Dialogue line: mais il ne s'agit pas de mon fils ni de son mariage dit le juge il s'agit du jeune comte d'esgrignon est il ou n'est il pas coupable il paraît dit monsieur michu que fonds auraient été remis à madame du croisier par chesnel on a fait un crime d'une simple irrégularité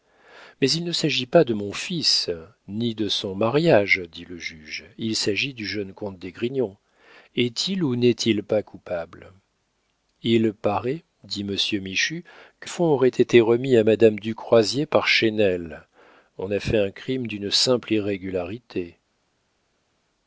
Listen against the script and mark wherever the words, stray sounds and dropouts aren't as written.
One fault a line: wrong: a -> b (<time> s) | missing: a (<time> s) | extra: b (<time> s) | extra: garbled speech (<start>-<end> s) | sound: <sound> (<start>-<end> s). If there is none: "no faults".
no faults